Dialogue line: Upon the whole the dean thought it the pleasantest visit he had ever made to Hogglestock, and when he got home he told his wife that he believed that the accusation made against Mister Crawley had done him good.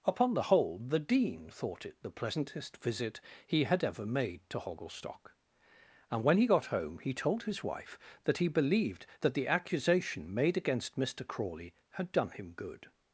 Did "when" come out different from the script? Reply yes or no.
no